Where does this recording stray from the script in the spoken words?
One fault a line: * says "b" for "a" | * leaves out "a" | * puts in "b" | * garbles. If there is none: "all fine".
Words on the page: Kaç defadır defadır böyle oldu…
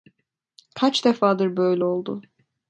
* leaves out "defadır"